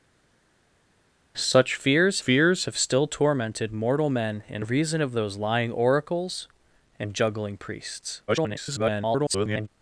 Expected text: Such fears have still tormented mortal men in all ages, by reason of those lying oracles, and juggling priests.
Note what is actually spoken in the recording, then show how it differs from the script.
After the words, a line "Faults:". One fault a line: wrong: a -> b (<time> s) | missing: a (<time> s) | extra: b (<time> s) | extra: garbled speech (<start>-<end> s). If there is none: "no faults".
Such fears fears have still tormented mortal men in reason of those lying oracles, and juggling priests. [garbled]
Faults:
extra: fears (2.2 s)
missing: all ages by (4.7 s)
extra: garbled speech (8.3-9.7 s)